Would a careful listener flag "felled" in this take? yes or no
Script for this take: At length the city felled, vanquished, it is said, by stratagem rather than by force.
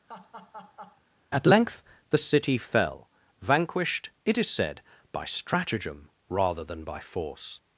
yes